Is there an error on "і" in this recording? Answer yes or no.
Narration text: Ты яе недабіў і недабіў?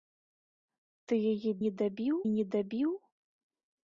no